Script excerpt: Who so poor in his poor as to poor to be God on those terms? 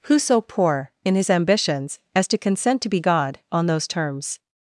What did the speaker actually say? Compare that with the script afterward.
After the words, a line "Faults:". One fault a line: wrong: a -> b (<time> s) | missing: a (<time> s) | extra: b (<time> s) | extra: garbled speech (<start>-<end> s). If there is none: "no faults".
Who so poor in his ambitions as to consent to be God on those terms?
Faults:
wrong: poor -> ambitions (1.3 s)
wrong: poor -> consent (2.4 s)